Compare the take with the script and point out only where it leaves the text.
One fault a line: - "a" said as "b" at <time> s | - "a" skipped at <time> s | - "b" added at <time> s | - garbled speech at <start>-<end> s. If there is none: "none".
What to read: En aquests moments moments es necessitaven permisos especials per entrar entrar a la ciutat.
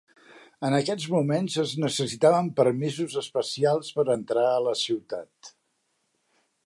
- "moments" skipped at 1.6 s
- "entrar" skipped at 4.5 s